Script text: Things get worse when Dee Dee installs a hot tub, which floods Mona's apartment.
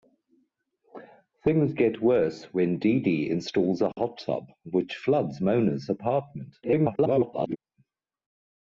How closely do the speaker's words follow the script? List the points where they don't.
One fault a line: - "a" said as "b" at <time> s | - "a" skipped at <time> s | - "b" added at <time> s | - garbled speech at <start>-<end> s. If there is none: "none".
- garbled speech at 6.6-7.6 s